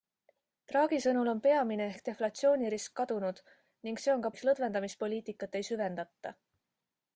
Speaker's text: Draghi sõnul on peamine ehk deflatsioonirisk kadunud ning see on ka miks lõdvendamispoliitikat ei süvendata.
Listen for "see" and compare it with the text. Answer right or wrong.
right